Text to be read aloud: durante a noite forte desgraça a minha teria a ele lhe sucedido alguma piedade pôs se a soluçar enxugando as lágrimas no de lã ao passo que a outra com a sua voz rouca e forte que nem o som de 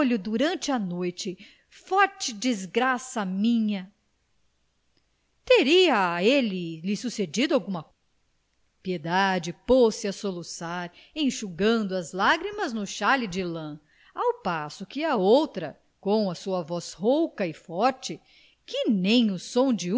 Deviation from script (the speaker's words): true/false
true